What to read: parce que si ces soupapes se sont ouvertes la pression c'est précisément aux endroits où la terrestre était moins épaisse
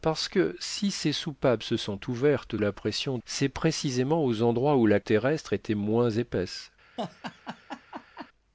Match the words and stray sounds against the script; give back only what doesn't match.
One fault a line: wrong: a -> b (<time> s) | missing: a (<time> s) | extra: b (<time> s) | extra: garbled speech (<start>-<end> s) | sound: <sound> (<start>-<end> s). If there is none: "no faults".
sound: laugh (7.0-8.3 s)